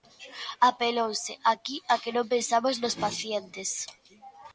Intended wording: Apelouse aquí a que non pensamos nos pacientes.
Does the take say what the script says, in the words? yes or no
yes